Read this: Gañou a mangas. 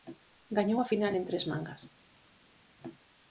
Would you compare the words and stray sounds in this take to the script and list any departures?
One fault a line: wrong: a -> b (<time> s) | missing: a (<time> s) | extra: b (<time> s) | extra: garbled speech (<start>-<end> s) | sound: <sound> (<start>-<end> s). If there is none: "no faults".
extra: final en tres (0.9 s)